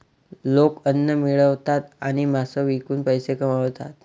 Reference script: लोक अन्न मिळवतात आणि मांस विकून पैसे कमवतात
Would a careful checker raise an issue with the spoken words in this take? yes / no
no